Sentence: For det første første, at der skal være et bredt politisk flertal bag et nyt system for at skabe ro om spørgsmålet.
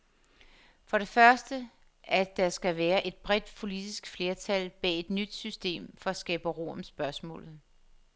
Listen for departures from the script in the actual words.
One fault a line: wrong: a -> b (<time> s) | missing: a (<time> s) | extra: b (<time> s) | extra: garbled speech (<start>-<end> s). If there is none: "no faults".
missing: første (1.7 s)